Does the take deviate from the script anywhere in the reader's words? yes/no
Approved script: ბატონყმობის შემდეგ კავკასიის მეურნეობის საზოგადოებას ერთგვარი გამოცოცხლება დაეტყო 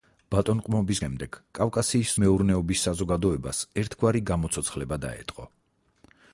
no